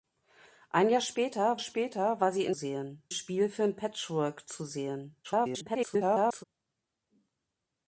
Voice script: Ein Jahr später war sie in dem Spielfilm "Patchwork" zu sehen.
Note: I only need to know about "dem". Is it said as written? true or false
false